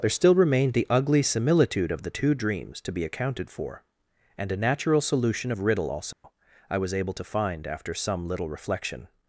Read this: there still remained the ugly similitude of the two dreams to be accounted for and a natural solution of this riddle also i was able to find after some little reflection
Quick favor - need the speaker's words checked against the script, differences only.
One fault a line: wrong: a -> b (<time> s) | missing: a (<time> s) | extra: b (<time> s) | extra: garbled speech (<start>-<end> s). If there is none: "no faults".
missing: this (5.6 s)